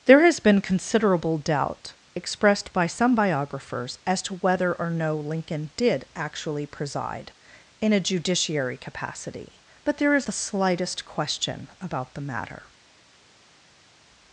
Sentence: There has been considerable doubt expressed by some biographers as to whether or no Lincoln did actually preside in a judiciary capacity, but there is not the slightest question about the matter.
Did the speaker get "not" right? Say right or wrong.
wrong